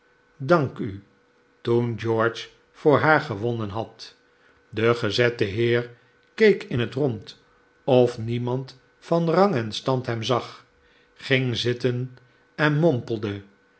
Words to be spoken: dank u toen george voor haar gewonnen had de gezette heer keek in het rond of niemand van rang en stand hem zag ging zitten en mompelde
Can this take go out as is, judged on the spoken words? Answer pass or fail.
pass